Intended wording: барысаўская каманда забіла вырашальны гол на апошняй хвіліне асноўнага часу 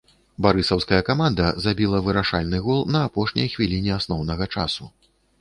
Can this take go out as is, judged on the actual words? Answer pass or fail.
pass